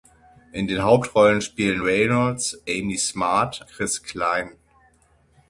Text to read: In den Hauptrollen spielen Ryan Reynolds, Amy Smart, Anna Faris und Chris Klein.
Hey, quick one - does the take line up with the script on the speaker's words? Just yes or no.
no